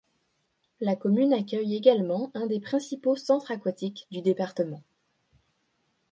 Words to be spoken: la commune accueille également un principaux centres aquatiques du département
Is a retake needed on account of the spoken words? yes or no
yes